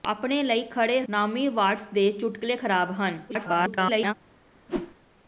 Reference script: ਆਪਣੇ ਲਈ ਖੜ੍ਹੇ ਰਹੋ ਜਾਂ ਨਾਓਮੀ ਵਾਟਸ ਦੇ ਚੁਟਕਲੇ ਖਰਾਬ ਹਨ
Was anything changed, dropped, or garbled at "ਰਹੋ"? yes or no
yes